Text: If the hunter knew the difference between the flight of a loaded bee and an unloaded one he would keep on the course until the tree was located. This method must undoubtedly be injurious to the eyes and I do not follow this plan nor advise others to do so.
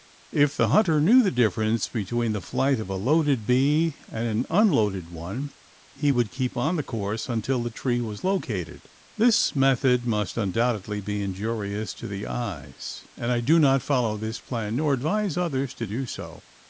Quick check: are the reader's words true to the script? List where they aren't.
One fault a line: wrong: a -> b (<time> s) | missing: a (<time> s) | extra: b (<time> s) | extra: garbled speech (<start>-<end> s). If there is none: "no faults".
no faults